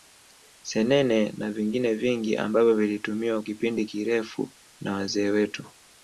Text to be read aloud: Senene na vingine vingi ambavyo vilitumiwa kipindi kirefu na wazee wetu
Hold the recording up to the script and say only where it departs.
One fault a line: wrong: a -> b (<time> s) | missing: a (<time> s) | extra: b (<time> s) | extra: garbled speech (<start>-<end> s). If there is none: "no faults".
no faults